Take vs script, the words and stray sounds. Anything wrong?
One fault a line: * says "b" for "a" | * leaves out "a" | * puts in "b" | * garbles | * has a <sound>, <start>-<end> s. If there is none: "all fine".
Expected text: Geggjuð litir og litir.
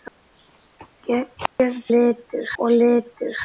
* has a dropout, 1.5-1.6 s